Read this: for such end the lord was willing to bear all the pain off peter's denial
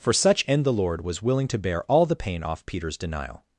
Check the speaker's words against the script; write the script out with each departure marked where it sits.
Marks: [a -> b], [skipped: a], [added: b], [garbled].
for such end the lord was willing to bear all the pain off peter's denial